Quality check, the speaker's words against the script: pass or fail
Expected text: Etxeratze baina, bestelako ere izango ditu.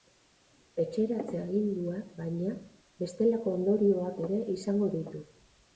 fail